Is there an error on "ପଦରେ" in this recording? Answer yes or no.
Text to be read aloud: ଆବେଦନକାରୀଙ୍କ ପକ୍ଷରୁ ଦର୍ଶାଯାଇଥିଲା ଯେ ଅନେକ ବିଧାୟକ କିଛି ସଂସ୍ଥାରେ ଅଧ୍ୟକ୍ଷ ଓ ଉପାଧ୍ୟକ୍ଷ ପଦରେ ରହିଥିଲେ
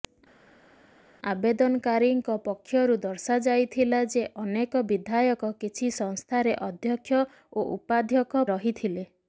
yes